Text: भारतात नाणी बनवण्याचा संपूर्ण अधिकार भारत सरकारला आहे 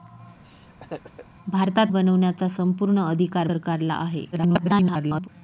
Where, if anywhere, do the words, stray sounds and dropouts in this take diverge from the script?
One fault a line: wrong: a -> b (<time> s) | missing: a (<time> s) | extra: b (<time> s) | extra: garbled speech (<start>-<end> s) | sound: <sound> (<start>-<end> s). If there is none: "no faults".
sound: laugh (0.4-1.3 s)
missing: नाणी (1.9 s)
missing: भारत (3.5 s)
extra: garbled speech (4.3-5.3 s)